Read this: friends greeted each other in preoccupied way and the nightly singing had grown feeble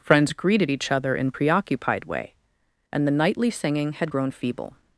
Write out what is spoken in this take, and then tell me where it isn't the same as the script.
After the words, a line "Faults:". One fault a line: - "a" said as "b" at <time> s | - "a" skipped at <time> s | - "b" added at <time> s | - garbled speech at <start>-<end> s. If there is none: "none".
friends greeted each other in preoccupied way and the nightly singing had grown feeble
Faults:
none